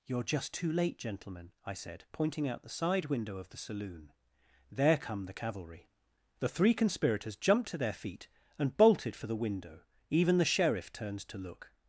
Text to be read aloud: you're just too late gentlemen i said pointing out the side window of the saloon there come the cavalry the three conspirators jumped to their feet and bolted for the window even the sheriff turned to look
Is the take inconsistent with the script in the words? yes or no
no